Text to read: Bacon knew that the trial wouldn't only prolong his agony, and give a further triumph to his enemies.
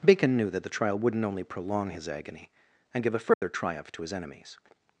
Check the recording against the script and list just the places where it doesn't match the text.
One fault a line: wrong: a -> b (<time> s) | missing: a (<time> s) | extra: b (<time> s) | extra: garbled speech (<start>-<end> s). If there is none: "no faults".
no faults